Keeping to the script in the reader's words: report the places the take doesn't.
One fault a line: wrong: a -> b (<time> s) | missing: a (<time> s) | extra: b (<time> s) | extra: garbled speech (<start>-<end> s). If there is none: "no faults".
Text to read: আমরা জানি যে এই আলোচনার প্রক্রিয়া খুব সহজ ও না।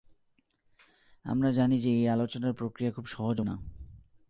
no faults